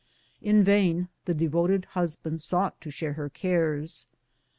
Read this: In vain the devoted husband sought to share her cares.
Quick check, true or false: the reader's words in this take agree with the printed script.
true